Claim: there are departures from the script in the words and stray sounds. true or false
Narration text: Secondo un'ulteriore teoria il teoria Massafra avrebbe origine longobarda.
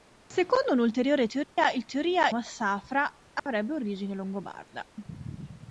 true